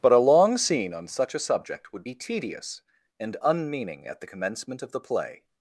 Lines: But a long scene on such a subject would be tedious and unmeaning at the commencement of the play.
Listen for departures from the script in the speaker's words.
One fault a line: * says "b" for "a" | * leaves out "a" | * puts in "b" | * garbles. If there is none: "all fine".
all fine